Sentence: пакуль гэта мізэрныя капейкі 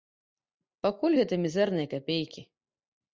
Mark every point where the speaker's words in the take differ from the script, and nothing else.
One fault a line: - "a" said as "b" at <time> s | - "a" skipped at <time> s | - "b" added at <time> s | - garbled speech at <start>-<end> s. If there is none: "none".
none